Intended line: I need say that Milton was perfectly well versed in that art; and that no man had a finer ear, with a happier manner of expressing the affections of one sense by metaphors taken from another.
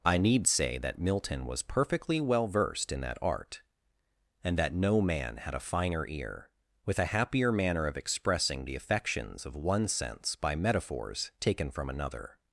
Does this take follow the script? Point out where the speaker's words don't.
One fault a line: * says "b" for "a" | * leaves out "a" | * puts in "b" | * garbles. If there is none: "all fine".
all fine